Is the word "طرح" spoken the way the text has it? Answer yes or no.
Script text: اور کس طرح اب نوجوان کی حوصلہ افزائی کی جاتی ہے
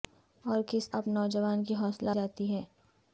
no